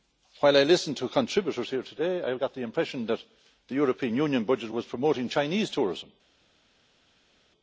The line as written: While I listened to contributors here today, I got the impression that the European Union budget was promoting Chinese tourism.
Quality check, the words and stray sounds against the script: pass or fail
pass